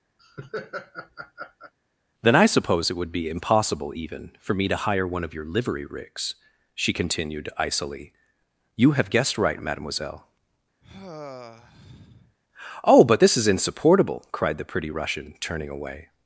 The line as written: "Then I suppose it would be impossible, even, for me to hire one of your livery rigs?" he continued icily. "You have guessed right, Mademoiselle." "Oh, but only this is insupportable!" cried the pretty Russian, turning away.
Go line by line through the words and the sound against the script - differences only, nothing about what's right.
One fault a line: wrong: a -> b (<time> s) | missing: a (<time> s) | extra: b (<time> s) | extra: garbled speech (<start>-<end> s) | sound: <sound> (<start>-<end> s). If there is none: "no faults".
sound: laugh (0.2-1.7 s)
wrong: he -> she (6.7 s)
sound: sigh (10.8-12.4 s)
missing: only (13.2 s)